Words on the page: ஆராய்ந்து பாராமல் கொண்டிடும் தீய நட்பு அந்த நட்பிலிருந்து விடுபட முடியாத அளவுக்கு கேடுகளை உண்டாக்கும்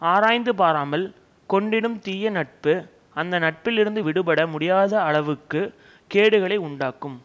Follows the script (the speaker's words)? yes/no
yes